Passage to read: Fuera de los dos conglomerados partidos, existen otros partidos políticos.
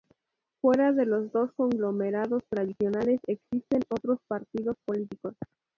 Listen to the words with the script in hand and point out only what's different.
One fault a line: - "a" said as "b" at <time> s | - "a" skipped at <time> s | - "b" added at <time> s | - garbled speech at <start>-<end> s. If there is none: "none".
- "partidos" said as "tradicionales" at 2.5 s